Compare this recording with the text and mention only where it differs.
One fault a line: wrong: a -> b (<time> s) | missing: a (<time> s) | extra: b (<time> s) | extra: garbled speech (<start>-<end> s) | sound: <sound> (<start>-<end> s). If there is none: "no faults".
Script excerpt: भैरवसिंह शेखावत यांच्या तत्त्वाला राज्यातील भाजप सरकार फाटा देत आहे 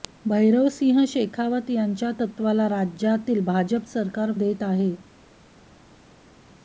missing: फाटा (4.3 s)